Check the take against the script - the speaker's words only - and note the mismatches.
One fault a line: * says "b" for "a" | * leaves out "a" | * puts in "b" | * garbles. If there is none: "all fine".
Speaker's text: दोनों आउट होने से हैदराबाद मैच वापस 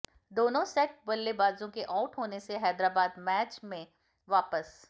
* puts in "सेट बल्लेबाजों के"
* puts in "में"